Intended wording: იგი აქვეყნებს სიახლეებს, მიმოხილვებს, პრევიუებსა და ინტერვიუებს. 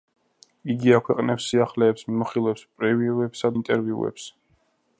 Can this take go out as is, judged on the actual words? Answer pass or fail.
fail